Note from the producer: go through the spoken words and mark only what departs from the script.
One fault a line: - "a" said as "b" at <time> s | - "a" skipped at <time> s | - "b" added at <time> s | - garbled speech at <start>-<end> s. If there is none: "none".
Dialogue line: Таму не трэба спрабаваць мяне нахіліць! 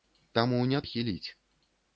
- "трэба спрабаваць мяне" skipped at 0.8 s